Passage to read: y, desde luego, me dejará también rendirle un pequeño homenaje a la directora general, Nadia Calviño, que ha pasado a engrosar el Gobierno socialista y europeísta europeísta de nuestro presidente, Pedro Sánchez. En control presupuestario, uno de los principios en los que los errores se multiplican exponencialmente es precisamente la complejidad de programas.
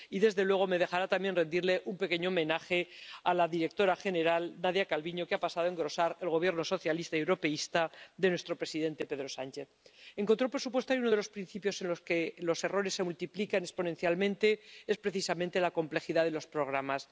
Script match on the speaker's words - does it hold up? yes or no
no